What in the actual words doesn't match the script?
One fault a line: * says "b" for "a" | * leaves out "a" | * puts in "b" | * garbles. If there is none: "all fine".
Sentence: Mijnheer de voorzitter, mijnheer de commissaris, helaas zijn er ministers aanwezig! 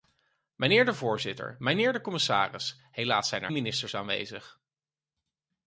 all fine